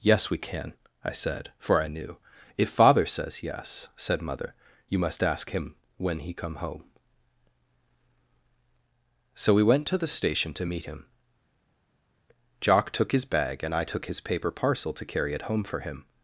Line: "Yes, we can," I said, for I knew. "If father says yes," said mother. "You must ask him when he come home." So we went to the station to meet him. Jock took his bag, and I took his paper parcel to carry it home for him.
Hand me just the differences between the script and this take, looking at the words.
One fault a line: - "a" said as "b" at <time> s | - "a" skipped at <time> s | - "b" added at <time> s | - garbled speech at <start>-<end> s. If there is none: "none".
none